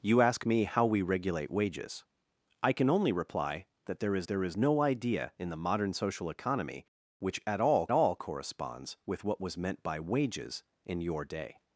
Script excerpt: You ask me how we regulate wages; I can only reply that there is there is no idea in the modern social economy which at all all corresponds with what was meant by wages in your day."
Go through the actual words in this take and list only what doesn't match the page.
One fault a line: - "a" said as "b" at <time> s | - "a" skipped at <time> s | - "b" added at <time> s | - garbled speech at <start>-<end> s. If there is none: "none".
none